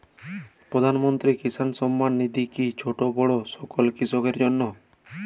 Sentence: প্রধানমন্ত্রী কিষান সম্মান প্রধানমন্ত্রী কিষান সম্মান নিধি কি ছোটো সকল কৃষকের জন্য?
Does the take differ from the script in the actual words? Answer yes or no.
yes